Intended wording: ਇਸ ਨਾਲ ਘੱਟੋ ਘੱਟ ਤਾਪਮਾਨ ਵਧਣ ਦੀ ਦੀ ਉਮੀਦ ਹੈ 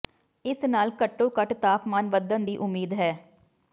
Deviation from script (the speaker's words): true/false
true